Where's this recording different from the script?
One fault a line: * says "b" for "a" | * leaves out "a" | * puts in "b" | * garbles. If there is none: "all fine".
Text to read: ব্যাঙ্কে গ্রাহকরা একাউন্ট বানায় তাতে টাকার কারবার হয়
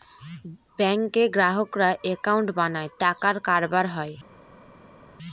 * leaves out "তাতে"